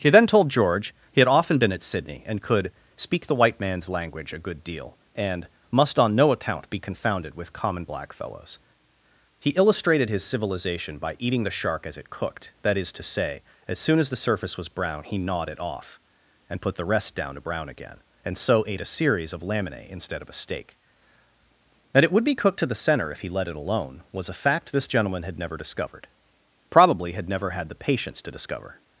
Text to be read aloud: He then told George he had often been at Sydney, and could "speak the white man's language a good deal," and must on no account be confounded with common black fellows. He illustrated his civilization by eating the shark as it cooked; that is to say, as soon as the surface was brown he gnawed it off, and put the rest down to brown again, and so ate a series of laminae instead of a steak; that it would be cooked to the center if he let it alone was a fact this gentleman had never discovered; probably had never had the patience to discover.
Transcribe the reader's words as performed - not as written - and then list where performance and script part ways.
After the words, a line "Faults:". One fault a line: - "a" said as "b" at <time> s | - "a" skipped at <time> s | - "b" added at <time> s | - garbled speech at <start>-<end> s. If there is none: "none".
He then told George he had often been at Sydney, and could "speak the white man's language a good deal," and must on no account be confounded with common black fellows. He illustrated his civilization by eating the shark as it cooked; that is to say, as soon as the surface was brown he gnawed it off, and put the rest down to brown again, and so ate a series of laminae instead of a steak; that it would be cooked to the center if he let it alone was a fact this gentleman had never discovered; probably had never had the patience to discover.
Faults:
none